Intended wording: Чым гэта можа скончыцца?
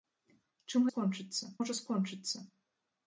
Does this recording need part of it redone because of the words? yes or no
yes